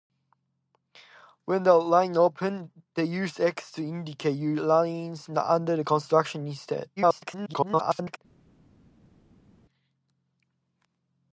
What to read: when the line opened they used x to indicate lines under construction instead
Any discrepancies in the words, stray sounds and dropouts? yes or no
yes